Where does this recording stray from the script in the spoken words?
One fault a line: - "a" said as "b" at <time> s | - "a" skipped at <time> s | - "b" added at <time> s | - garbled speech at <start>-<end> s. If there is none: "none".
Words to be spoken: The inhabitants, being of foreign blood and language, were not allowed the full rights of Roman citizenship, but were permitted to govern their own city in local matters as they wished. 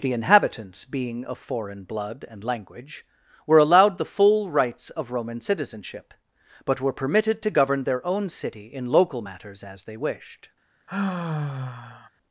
- "not" skipped at 3.6 s